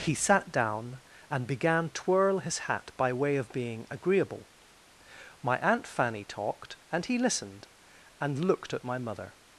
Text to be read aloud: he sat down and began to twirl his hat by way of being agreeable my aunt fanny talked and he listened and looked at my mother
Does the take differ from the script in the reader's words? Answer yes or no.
yes